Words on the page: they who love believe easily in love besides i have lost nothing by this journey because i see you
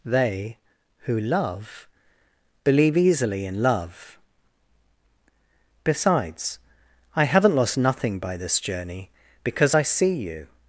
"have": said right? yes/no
no